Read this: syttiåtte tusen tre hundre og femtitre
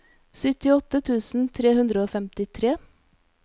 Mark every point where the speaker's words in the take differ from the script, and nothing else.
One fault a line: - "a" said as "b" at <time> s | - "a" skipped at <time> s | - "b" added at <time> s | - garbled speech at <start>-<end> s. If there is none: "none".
none